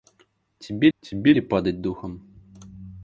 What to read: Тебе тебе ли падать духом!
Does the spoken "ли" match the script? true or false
true